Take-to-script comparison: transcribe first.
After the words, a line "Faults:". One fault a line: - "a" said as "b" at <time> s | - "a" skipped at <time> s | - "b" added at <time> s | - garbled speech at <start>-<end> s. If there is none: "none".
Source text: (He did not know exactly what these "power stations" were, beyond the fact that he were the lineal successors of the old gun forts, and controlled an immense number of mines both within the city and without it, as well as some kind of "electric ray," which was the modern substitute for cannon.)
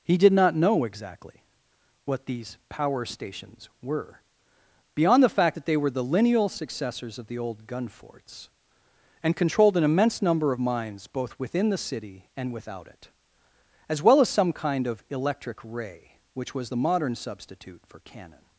(He did not know exactly what these "power stations" were, beyond the fact that they were the lineal successors of the old gun forts, and controlled an immense number of mines both within the city and without it, as well as some kind of "electric ray," which was the modern substitute for cannon.)
Faults:
- "he" said as "they" at 5.6 s